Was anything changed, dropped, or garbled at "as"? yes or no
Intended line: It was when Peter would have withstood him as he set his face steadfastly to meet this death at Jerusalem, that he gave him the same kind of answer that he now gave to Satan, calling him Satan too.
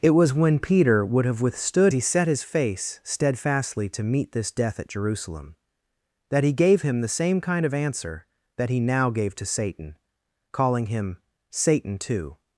yes